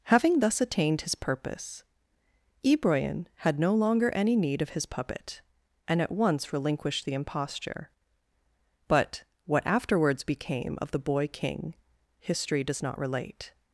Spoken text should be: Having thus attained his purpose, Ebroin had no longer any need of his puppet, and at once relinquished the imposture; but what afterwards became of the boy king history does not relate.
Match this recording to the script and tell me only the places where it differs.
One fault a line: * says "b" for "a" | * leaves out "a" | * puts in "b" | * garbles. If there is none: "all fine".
all fine